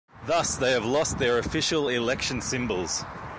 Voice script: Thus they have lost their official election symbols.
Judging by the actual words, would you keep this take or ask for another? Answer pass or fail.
pass